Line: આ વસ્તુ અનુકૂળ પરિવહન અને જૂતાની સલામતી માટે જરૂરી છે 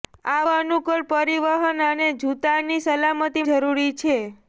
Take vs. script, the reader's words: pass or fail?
fail